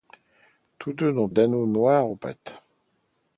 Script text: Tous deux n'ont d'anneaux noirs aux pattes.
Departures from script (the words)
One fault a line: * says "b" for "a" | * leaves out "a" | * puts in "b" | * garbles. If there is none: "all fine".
all fine